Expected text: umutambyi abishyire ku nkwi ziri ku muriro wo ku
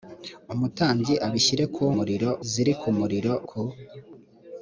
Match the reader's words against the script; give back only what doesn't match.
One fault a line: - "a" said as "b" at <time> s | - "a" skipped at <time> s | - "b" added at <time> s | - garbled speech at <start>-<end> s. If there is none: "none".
- "nkwi" said as "muriro" at 2.0 s
- "wo" skipped at 3.3 s